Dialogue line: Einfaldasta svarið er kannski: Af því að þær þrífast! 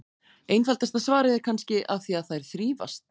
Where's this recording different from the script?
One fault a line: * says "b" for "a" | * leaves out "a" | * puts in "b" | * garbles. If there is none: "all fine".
all fine